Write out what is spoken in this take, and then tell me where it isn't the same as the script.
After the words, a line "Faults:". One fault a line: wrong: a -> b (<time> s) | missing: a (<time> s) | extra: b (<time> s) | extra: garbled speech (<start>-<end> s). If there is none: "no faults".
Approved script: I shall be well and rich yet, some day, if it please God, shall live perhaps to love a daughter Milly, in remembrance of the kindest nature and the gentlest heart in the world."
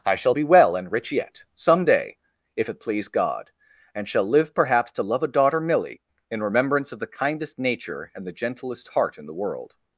I shall be well and rich yet, some day, if it please God, and shall live perhaps to love a daughter Milly, in remembrance of the kindest nature and the gentlest heart in the world."
Faults:
extra: and (3.9 s)